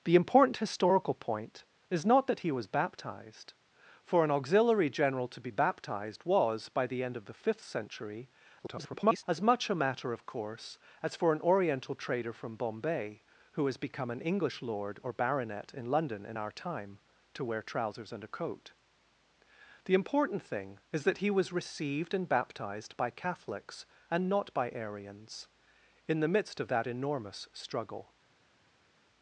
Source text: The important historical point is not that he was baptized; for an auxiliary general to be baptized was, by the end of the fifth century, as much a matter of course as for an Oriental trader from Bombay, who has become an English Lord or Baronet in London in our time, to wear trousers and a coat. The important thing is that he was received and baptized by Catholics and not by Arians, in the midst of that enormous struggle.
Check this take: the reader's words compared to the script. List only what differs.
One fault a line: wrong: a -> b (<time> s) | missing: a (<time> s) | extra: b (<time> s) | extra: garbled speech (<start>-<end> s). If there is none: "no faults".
extra: garbled speech (8.6-9.2 s)